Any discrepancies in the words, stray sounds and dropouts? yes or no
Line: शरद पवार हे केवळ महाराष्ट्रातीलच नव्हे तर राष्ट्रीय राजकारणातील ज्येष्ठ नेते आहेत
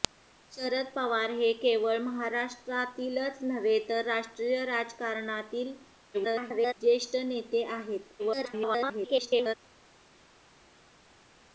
yes